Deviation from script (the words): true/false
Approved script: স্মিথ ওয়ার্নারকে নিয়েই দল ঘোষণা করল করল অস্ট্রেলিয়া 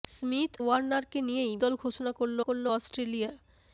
false